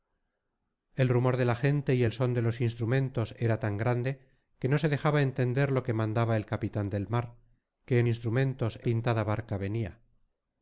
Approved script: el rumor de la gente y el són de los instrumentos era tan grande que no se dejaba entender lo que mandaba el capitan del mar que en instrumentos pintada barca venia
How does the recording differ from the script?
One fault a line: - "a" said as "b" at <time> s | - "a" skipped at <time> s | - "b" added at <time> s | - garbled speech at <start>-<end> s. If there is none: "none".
none